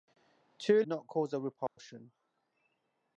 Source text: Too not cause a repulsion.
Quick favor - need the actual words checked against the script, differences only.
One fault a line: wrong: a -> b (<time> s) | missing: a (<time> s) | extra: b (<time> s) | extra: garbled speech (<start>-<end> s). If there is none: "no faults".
no faults